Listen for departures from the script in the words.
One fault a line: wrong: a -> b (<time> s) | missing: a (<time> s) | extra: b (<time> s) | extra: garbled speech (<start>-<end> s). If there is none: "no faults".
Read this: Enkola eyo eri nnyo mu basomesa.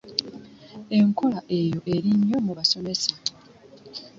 no faults